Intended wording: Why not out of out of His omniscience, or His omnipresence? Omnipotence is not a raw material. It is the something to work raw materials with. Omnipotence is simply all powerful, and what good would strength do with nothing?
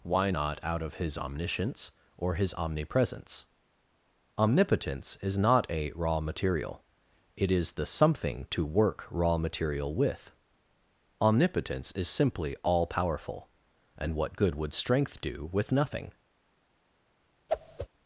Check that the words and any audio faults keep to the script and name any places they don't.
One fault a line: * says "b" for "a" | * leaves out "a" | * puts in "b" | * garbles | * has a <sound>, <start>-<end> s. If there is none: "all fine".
* leaves out "out of"
* says "material" for "materials"
* has a whoosh, 17.5-17.9 s